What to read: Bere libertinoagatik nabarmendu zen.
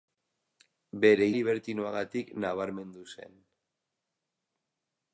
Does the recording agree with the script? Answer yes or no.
yes